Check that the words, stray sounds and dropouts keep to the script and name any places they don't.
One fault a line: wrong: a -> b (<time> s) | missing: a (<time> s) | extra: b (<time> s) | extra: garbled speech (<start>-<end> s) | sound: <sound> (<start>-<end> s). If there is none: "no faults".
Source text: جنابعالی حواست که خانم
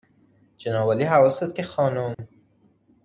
sound: dropout (2.1-2.2 s)